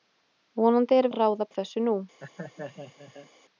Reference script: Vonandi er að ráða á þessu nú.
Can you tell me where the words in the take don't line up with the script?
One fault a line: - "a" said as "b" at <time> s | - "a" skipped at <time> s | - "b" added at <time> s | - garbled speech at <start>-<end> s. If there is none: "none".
none